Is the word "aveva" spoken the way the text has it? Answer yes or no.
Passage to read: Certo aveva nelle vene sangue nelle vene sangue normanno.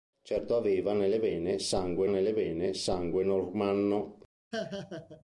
yes